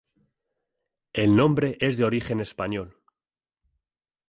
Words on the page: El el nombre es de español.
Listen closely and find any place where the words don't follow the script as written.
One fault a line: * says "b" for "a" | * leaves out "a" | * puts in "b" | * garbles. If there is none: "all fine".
* leaves out "el"
* puts in "origen"